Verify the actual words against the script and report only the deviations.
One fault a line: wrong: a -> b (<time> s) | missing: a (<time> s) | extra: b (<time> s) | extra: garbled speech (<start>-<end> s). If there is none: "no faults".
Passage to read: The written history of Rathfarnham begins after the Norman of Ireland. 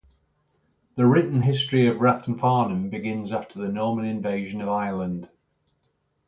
extra: invasion (4.0 s)